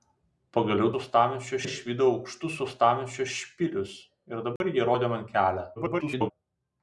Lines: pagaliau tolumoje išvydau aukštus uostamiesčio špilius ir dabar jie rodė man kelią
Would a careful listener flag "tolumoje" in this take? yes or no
yes